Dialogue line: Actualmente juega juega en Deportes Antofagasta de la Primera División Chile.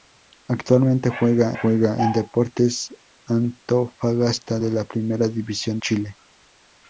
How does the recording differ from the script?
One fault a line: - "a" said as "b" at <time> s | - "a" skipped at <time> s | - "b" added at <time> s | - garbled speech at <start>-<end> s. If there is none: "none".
none